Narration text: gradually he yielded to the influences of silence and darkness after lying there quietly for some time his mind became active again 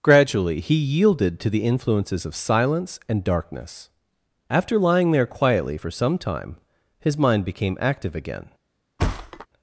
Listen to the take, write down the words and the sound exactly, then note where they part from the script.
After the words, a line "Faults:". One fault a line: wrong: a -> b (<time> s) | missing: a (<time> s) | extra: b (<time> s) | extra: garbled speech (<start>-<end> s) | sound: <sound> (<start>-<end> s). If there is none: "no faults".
gradually he yielded to the influences of silence and darkness after lying there quietly for some time his mind became active again
Faults:
sound: thud (9.0-9.5 s)